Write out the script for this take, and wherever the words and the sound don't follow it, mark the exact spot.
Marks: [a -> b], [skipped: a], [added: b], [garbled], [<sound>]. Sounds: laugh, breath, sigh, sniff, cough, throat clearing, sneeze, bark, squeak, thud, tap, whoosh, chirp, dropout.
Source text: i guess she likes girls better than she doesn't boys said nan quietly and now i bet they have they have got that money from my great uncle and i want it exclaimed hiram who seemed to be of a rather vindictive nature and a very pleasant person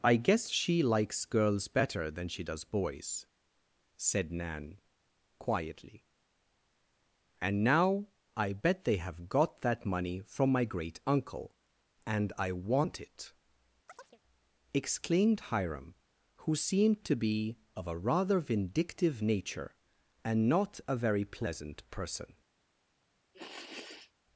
i guess she likes girls better than she [doesn't -> does] boys said nan quietly and now i bet they have [skipped: they have] got that money from my great uncle and i want it [chirp] exclaimed hiram who seemed to be of a rather vindictive nature and [added: not] a very pleasant person [sniff]